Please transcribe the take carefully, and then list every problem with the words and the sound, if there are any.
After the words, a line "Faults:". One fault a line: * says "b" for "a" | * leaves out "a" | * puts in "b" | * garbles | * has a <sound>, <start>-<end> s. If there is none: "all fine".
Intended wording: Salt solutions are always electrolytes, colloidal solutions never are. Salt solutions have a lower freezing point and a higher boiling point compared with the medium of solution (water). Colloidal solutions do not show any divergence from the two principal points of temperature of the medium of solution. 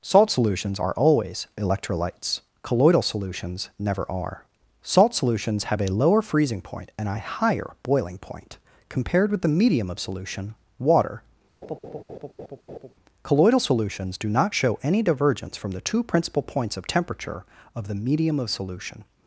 Salt solutions are always electrolytes, colloidal solutions never are. Salt solutions have a lower freezing point and a higher boiling point compared with the medium of solution (water). Colloidal solutions do not show any divergence from the two principal points of temperature of the medium of solution.
Faults:
* has a laugh, 11.6-12.9 s